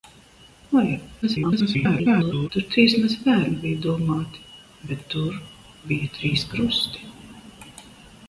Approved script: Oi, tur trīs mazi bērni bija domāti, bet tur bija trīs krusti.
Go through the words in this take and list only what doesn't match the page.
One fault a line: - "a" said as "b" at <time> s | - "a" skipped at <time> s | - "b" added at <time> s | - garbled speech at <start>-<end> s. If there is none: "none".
- garbled speech at 1.2-2.5 s